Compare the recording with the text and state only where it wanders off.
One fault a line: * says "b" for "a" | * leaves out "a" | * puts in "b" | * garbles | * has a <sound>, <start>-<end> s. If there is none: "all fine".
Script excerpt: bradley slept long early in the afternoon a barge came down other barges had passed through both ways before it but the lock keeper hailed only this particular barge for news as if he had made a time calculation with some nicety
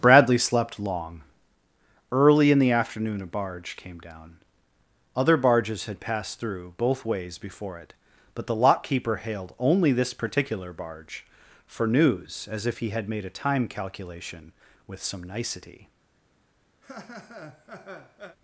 * has a laugh, 16.8-18.4 s